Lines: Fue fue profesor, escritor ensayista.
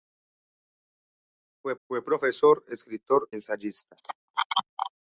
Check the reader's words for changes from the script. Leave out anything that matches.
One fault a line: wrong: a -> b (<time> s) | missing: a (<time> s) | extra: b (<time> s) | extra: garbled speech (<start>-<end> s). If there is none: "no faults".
no faults